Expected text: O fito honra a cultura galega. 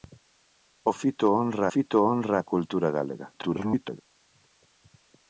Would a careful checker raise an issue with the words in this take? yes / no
yes